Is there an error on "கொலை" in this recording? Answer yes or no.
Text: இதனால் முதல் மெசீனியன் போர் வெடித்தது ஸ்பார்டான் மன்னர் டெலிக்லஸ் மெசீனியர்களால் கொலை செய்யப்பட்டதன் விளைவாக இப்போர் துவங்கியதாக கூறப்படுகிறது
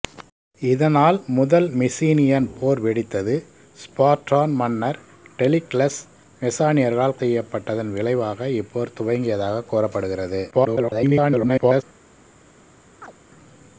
yes